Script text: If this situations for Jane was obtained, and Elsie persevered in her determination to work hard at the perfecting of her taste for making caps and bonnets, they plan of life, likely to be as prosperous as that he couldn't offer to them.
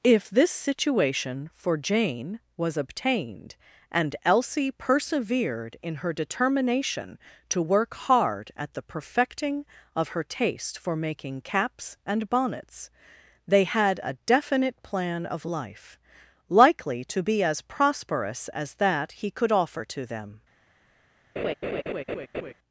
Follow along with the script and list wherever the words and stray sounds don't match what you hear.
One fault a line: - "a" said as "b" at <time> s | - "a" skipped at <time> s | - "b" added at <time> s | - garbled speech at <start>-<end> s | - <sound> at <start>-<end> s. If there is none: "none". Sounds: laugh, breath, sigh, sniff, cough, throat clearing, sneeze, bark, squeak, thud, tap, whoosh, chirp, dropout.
- "situations" said as "situation" at 0.5 s
- "had a definite" added at 13.7 s
- "couldn't" said as "could" at 19.3 s
- laugh at 21.4-22.5 s